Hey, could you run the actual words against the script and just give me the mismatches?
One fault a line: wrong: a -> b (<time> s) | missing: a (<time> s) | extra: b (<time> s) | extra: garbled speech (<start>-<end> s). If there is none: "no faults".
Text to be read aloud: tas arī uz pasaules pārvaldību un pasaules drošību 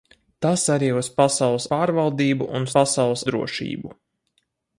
no faults